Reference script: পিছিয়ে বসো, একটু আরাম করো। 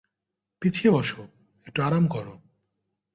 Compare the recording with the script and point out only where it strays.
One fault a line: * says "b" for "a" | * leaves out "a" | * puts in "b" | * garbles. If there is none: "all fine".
all fine